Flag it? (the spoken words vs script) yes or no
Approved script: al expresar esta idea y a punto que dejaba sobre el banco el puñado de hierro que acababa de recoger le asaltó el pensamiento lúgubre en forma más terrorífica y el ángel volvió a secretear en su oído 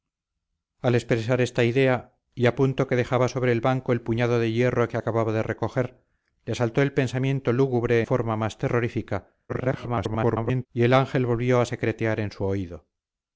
yes